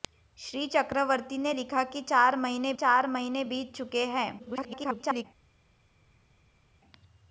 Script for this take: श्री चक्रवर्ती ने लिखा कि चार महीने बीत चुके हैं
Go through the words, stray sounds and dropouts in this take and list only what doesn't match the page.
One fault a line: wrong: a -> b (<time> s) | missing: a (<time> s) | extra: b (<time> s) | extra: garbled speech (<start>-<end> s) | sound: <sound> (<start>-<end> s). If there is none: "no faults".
extra: चार महीने (2.7 s)
extra: garbled speech (4.4-5.3 s)